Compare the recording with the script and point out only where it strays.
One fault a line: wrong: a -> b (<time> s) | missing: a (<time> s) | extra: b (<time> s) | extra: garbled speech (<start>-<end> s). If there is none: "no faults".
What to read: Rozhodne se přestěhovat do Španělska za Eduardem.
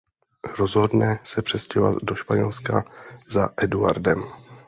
no faults